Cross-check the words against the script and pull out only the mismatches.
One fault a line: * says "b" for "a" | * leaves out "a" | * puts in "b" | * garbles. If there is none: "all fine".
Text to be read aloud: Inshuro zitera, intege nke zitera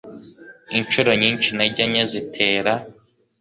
* says "nyinshi" for "zitera"